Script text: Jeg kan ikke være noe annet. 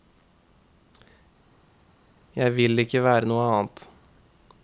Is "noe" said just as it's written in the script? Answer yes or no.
yes